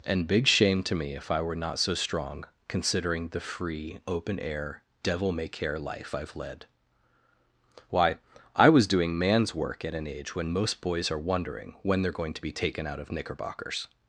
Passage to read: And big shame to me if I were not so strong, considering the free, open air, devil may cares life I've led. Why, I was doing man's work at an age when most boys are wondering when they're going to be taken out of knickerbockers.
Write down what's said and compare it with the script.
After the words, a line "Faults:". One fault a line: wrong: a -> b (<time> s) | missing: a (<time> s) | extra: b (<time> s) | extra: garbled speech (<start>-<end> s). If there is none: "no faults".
And big shame to me if I were not so strong, considering the free, open air, devil may care life I've led. Why, I was doing man's work at an age when most boys are wondering when they're going to be taken out of knickerbockers.
Faults:
wrong: cares -> care (5.5 s)